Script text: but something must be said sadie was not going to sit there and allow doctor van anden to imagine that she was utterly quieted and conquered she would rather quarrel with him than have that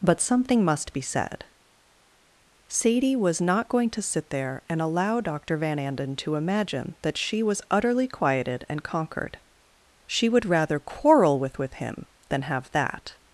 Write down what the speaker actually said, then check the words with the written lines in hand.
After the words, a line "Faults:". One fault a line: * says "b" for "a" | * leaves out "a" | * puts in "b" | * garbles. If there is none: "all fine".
but something must be said sadie was not going to sit there and allow doctor van anden to imagine that she was utterly quieted and conquered she would rather quarrel with with him than have that
Faults:
* puts in "with"